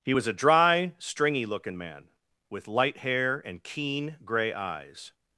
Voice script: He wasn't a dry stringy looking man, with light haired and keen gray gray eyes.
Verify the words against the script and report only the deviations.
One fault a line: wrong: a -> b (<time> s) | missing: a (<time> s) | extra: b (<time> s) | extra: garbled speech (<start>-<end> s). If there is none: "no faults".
wrong: wasn't -> was (0.1 s)
wrong: haired -> hair (3.0 s)
missing: gray (4.5 s)